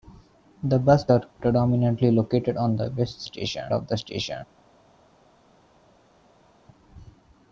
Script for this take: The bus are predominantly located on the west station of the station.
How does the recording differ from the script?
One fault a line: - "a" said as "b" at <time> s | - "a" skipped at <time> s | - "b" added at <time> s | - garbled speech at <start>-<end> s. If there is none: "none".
none